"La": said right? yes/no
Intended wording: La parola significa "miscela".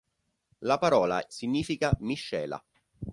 yes